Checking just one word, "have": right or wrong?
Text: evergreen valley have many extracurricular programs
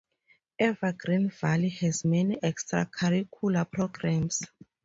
wrong